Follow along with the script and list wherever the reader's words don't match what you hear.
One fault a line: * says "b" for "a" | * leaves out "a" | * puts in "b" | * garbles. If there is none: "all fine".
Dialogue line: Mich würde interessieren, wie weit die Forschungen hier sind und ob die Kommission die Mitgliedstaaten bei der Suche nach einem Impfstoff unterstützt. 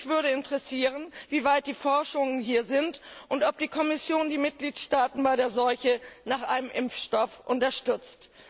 all fine